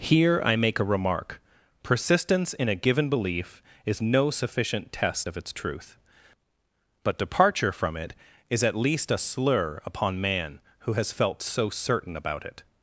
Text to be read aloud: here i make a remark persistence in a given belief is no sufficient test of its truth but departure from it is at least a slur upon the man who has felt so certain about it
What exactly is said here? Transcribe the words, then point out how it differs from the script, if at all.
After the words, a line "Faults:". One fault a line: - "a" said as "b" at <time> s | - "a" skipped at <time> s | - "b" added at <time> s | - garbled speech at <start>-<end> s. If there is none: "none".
here i make a remark persistence in a given belief is no sufficient test of its truth but departure from it is at least a slur upon man who has felt so certain about it
Faults:
- "the" skipped at 10.2 s